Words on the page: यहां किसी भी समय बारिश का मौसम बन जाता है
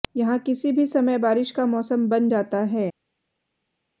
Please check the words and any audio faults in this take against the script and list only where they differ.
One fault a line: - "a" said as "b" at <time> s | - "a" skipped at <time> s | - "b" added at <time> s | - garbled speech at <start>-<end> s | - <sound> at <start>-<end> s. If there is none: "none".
none